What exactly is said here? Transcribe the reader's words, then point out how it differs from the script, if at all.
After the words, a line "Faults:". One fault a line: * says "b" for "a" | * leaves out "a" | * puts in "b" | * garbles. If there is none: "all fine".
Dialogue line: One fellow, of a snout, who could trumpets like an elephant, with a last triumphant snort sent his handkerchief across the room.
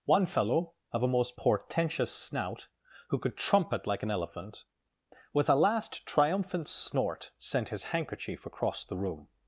One fellow, of a most portentous snout, who could trumpet like an elephant, with a last triumphant snort sent his handkerchief across the room.
Faults:
* puts in "most portentous"
* says "trumpet" for "trumpets"